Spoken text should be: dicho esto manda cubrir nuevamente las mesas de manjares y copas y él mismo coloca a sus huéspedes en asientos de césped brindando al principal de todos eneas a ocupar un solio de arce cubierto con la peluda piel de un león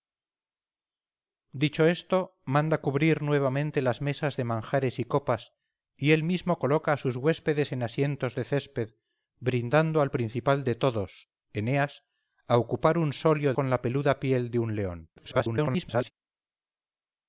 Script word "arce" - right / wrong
wrong